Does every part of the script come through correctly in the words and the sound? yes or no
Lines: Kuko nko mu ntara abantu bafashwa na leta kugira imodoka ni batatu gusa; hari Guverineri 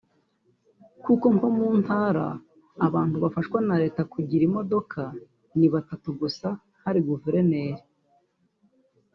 yes